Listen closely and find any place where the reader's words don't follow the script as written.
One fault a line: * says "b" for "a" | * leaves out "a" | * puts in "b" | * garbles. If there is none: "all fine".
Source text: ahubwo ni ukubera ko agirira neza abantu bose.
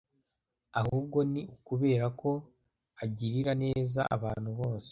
all fine